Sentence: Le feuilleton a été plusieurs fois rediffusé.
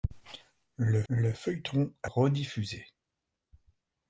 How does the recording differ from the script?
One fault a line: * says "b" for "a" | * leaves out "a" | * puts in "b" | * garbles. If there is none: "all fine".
* puts in "le"
* leaves out "été plusieurs fois"